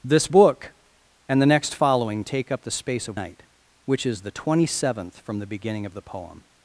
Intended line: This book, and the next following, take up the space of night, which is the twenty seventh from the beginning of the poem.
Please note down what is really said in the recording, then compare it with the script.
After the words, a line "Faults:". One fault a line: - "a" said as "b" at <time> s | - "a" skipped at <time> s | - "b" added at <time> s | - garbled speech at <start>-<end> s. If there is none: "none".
This book, and the next following, take up the space of night, which is the twenty seventh from the beginning of the poem.
Faults:
none